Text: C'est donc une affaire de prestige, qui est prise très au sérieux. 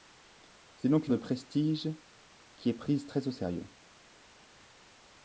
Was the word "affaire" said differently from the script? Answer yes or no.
yes